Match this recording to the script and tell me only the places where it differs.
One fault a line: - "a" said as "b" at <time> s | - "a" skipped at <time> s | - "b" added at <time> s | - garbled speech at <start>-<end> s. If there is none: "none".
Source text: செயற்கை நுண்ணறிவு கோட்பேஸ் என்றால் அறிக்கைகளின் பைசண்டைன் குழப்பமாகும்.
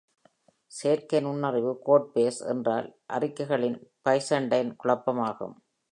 none